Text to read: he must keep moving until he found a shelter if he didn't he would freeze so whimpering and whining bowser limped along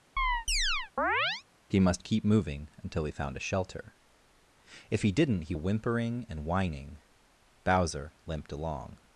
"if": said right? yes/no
yes